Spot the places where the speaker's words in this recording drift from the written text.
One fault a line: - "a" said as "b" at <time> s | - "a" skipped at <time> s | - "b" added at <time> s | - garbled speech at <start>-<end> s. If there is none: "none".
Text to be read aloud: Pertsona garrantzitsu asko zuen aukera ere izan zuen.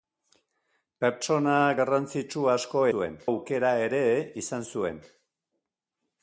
none